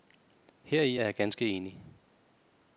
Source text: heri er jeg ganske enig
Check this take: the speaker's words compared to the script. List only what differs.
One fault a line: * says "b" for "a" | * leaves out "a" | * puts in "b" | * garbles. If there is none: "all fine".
all fine